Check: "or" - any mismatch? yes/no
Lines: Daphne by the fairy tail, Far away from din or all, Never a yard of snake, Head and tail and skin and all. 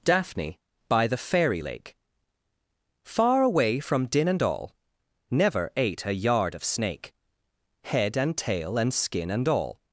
yes